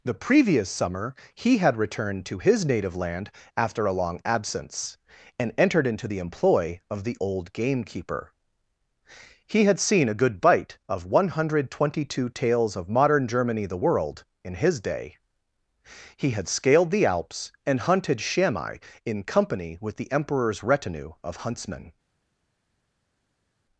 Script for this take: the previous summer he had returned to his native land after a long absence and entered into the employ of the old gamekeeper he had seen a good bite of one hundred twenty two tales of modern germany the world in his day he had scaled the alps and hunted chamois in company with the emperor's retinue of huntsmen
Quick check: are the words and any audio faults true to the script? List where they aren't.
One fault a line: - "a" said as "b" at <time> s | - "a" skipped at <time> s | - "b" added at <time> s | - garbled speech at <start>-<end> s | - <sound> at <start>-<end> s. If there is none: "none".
none